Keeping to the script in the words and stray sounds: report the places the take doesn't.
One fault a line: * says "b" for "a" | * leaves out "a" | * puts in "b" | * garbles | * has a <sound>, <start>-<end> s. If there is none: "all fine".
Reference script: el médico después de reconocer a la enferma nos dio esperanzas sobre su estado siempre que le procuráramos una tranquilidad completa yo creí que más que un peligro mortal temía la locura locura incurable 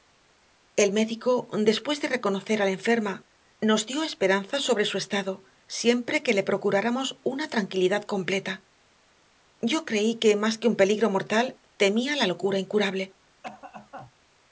* leaves out "locura"
* has a cough, 13.4-14.1 s